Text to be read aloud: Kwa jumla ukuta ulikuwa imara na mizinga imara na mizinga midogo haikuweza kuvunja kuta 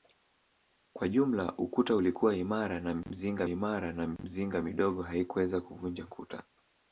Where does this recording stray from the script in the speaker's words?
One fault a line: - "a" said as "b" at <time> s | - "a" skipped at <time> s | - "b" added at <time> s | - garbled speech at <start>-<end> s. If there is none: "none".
none